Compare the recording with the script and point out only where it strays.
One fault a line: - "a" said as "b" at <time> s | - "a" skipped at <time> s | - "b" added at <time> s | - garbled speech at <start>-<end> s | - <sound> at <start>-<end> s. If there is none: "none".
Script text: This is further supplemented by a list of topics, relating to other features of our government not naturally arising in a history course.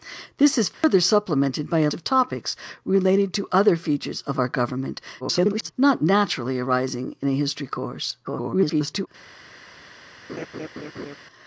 - dropout at 0.7-0.8 s
- "list" skipped at 1.9 s
- garbled speech at 5.2-5.7 s
- garbled speech at 8.2-9.1 s
- laugh at 10.3-11.2 s